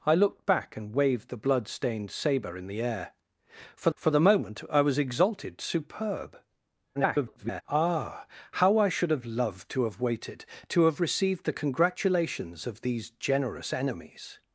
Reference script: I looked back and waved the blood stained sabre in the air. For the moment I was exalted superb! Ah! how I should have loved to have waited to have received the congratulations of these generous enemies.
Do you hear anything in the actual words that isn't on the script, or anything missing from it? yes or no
yes